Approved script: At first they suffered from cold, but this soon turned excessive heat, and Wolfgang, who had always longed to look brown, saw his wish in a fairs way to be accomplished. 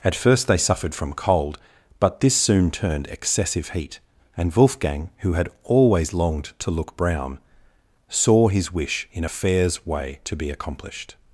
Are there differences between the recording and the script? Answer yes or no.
no